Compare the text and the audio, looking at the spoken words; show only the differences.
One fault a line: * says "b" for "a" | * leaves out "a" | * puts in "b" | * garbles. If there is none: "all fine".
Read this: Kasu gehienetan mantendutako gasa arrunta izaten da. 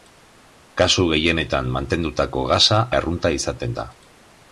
all fine